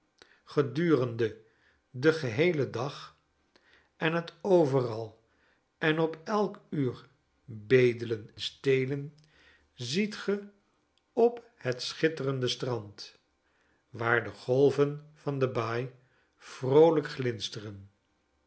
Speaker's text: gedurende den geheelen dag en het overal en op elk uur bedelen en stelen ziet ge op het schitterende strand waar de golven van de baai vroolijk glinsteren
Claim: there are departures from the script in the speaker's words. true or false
true